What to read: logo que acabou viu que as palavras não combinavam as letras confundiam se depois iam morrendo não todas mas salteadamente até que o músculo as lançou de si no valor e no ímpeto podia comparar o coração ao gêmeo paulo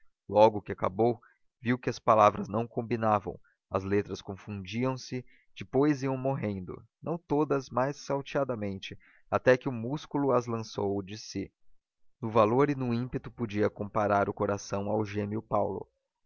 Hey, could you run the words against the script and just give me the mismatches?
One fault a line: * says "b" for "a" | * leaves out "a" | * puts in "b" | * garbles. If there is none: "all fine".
all fine